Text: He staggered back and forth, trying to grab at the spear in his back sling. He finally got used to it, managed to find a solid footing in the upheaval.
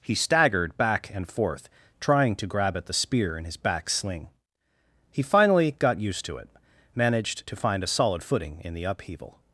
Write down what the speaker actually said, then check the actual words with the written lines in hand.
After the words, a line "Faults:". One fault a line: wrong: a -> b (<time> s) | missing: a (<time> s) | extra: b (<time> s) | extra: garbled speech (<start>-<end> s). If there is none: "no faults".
He staggered back and forth, trying to grab at the spear in his back sling. He finally got used to it, managed to find a solid footing in the upheaval.
Faults:
no faults